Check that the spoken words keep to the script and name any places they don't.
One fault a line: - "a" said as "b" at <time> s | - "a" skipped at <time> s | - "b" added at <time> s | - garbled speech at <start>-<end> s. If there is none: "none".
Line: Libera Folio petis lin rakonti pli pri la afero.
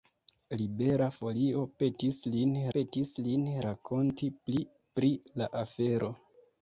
- "petis lin" added at 2.8 s